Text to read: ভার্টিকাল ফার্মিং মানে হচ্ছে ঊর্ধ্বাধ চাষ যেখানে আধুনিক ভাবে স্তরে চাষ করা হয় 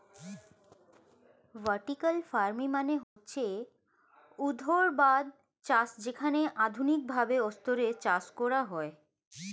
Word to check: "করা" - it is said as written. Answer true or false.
true